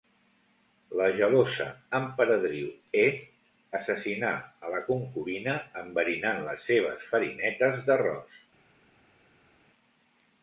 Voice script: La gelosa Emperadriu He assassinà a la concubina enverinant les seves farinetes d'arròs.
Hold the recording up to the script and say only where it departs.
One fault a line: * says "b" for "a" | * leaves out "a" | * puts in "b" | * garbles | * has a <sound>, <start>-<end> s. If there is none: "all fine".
all fine